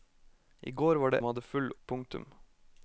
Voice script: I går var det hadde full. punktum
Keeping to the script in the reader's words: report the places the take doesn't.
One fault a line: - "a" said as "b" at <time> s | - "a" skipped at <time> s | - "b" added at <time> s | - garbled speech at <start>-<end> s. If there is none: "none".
none